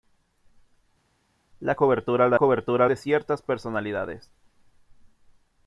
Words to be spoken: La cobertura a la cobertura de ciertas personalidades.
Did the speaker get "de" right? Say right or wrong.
right